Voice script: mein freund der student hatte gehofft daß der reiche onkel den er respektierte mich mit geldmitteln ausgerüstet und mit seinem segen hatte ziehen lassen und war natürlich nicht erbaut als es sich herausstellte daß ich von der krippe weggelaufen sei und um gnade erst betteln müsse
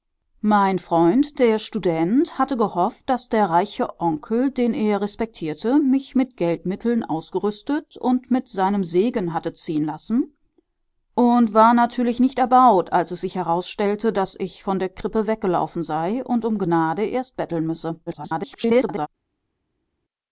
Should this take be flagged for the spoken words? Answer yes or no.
yes